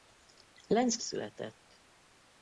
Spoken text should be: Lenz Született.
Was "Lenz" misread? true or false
false